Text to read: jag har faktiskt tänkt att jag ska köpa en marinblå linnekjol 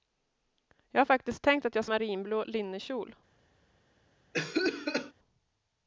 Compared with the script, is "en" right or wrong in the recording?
wrong